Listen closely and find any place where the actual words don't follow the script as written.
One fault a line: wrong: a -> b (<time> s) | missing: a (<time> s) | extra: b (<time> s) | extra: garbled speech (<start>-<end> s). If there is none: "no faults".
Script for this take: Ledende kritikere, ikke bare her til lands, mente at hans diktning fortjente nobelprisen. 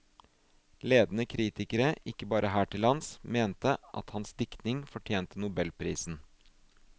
no faults